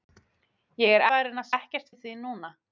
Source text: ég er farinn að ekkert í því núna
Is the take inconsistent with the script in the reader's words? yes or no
no